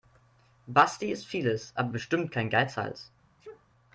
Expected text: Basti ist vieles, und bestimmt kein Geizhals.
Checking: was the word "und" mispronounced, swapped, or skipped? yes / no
yes